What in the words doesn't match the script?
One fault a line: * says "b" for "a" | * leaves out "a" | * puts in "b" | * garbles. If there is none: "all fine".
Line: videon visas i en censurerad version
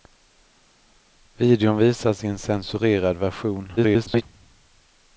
* garbles